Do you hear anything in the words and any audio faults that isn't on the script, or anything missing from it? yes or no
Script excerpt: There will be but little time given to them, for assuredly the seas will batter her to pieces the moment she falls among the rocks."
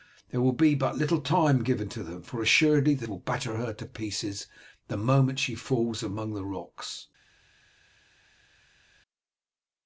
yes